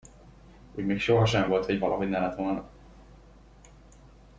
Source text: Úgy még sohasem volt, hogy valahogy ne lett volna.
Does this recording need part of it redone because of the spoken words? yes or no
no